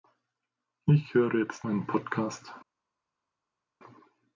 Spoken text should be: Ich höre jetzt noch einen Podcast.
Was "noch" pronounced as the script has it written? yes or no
no